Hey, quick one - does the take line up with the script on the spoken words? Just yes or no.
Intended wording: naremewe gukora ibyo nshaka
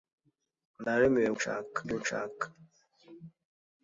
no